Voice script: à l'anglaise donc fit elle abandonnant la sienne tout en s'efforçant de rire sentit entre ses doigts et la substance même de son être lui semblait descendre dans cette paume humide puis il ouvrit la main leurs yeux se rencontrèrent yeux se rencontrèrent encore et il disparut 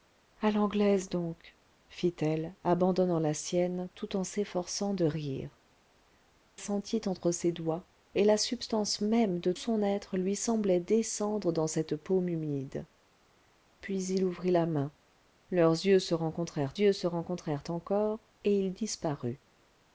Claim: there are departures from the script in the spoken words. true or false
false